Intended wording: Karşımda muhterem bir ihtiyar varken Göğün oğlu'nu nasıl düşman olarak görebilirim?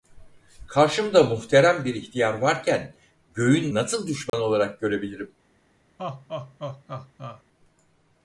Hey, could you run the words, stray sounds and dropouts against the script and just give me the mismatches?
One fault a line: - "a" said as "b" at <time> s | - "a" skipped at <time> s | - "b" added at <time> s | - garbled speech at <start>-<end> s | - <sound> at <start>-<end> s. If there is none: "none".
- "oğlu'nu" skipped at 3.7 s
- dropout at 4.3-4.3 s
- laugh at 6.0-7.4 s